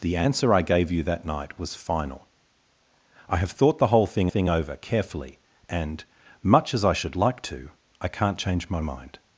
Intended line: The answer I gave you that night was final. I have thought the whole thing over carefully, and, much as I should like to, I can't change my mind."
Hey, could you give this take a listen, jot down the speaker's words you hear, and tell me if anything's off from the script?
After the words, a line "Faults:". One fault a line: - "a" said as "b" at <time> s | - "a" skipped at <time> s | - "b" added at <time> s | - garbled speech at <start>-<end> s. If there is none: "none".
The answer I gave you that night was final. I have thought the whole thing thing over carefully, and, much as I should like to, I can't change my mind."
Faults:
- "thing" added at 4.3 s